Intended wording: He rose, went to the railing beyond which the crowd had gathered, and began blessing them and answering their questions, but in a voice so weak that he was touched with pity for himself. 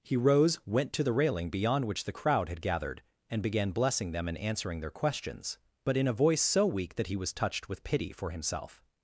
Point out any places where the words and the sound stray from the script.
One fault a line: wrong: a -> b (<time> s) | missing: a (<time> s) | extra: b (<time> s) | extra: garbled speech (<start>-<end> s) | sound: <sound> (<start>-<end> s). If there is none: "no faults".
no faults